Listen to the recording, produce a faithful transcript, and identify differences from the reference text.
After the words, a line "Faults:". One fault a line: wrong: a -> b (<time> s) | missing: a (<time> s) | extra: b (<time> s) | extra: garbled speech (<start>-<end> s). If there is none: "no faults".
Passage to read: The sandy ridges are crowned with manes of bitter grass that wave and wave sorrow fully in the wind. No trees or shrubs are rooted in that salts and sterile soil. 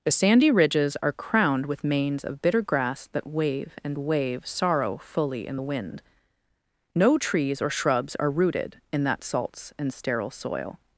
The sandy ridges are crowned with manes of bitter grass that wave and wave sorrow fully in the wind. No trees or shrubs are rooted in that salts and sterile soil.
Faults:
no faults